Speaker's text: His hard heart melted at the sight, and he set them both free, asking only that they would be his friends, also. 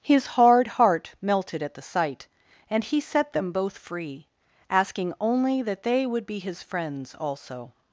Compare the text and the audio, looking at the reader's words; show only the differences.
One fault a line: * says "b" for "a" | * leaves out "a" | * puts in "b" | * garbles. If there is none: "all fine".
all fine